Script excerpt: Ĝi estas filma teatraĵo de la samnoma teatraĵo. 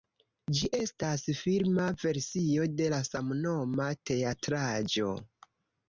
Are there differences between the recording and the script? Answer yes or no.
yes